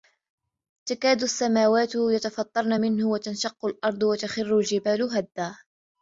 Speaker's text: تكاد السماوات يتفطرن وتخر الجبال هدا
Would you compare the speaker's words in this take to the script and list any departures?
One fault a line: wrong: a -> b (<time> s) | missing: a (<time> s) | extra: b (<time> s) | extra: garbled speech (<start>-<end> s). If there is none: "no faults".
extra: منه وتنشق الأرض (2.8 s)